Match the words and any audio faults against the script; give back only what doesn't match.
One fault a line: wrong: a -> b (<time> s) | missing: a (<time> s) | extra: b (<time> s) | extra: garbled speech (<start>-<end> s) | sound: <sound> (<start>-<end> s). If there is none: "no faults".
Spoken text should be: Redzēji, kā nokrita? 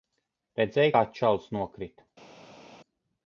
extra: čalis (1.2 s)